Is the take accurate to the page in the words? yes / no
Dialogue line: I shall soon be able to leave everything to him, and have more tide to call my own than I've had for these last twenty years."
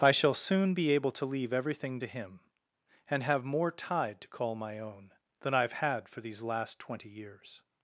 yes